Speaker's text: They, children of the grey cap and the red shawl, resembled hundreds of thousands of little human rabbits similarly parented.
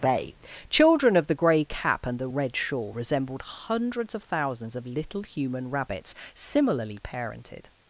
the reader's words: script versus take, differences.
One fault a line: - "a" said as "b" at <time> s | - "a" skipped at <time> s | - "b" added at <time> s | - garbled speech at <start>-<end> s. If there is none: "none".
- "They" said as "Bay" at 0.0 s